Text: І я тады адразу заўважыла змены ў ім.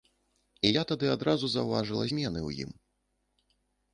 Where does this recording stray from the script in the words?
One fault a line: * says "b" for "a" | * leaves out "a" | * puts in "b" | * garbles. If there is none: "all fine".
all fine